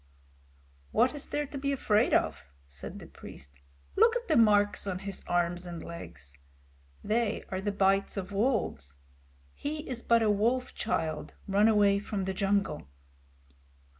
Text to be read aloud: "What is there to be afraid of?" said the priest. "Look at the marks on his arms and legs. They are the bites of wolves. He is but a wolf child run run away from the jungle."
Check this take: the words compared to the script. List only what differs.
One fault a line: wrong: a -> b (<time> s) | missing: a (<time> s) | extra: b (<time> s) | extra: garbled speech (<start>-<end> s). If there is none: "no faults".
missing: run (11.7 s)